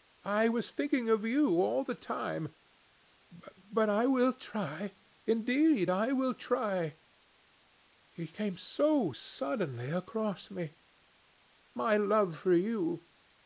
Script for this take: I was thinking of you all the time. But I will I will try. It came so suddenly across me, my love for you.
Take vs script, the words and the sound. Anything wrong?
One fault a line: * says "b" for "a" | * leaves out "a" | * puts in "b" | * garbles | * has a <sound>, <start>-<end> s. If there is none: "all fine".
* puts in "try indeed"